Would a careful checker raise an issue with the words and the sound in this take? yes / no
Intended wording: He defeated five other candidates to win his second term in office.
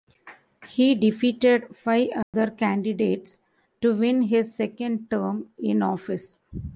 yes